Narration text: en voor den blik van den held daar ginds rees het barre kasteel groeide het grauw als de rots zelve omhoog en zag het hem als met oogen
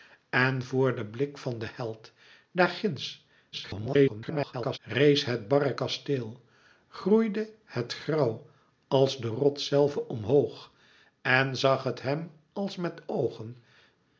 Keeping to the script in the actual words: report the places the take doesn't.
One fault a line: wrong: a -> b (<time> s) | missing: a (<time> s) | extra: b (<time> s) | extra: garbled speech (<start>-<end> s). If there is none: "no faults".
extra: garbled speech (3.5-4.8 s)